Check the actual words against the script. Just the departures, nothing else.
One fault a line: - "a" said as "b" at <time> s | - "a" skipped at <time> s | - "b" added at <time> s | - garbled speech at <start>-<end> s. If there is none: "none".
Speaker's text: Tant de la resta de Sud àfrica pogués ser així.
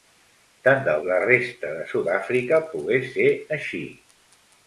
none